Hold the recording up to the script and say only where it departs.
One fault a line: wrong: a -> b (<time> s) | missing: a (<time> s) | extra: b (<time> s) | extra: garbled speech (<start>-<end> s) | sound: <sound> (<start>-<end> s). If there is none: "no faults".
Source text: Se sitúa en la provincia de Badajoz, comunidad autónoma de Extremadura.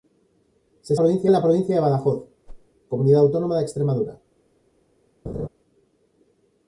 wrong: sitúa -> provincia (1.0 s)
sound: whoosh (2.5-2.7 s)
sound: laugh (5.2-5.5 s)